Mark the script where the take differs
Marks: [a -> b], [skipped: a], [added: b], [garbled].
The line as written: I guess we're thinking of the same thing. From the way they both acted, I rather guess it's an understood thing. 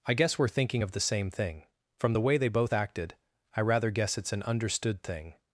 I guess we're thinking of the same thing. From the way they both acted, I rather guess it's an understood thing.